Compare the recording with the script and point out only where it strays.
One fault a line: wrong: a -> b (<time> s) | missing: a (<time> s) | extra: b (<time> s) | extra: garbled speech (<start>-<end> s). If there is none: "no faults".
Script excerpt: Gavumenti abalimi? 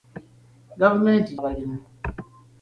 no faults